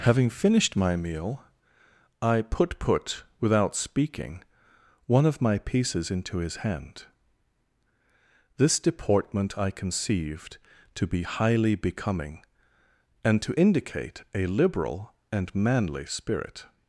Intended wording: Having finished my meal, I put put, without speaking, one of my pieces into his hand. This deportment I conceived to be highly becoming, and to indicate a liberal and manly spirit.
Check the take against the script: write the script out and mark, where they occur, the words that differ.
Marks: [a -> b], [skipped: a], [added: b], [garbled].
Having finished my meal, I put put, without speaking, one of my pieces into his hand. This deportment I conceived to be highly becoming, and to indicate a liberal and manly spirit.